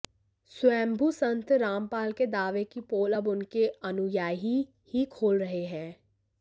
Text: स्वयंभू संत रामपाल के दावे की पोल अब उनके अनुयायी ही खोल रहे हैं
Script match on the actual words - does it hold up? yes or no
yes